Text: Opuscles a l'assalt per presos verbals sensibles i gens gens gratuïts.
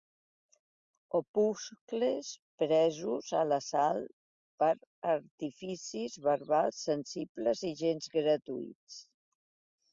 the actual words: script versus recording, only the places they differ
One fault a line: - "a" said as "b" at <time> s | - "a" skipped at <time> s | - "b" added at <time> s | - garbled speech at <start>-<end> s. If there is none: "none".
- "presos" added at 2.6 s
- "presos" said as "artificis" at 5.1 s
- "gens" skipped at 8.1 s